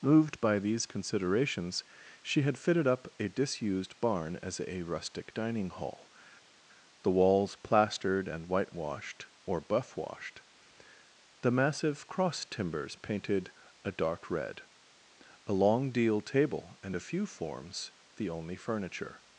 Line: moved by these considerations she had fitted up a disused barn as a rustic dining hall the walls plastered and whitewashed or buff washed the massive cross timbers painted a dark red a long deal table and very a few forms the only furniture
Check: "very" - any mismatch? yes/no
yes